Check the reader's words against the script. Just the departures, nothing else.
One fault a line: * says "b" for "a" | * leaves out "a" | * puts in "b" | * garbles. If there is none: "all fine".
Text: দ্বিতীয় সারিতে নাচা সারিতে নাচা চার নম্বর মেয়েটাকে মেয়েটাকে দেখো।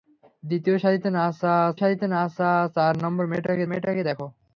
all fine